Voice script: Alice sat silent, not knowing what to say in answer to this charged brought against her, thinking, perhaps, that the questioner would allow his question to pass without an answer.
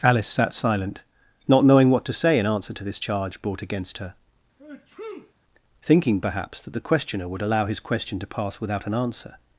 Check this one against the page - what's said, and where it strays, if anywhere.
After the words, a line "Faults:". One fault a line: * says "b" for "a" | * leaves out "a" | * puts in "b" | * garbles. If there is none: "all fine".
Alice sat silent, not knowing what to say in answer to this charge brought against her, thinking, perhaps, that the questioner would allow his question to pass without an answer.
Faults:
* says "charge" for "charged"